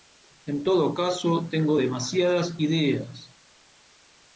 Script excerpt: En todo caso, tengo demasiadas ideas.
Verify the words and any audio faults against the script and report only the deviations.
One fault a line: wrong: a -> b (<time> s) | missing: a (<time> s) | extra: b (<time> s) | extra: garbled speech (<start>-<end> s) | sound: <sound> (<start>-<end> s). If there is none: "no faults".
no faults